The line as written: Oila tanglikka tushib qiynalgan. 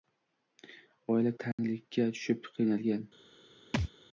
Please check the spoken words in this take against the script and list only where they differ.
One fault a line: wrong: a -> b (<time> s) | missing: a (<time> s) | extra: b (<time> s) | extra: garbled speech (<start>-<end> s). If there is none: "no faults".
no faults